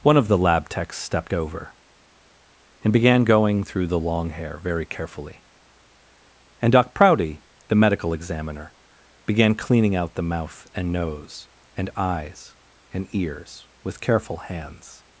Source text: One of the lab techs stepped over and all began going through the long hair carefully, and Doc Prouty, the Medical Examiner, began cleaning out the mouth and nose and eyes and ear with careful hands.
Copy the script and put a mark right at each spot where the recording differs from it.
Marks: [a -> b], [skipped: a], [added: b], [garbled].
One of the lab techs stepped over and [skipped: all] began going through the long hair [added: very] carefully, and Doc Prouty, the Medical Examiner, began cleaning out the mouth and nose and eyes and [ear -> ears] with careful hands.